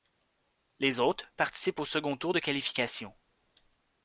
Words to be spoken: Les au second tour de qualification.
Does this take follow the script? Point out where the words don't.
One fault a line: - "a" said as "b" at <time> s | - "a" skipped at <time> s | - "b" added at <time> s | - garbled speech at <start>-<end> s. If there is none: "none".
- "autres participent" added at 1.0 s